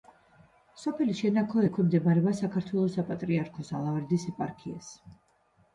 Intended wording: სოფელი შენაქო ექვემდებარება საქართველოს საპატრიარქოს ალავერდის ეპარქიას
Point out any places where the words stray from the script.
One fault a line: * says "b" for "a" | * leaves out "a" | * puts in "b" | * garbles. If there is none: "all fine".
all fine